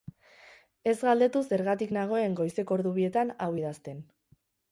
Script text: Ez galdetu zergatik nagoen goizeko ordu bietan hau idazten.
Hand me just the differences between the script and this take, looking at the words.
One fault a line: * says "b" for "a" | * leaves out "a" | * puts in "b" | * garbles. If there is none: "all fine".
all fine